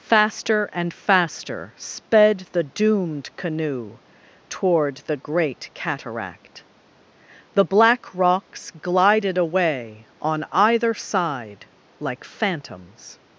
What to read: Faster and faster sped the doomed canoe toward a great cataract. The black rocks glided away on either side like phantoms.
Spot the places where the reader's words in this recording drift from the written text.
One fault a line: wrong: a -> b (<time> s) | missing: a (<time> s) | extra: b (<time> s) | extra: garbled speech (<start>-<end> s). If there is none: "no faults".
wrong: a -> the (5.0 s)